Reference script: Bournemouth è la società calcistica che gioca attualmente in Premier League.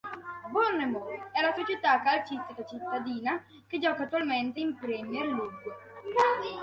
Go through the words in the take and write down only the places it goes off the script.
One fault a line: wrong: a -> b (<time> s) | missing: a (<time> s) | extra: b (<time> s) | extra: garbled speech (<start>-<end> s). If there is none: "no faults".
extra: cittadina (2.6 s)